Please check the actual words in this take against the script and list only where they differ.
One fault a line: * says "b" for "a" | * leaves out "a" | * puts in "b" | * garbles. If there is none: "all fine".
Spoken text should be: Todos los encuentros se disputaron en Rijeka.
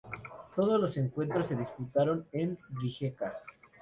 all fine